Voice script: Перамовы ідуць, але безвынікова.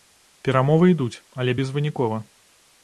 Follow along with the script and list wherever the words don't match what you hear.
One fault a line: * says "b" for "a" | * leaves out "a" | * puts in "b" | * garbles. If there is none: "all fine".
all fine